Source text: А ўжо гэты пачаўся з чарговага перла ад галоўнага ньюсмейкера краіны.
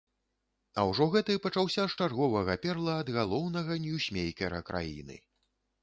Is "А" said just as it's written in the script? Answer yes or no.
yes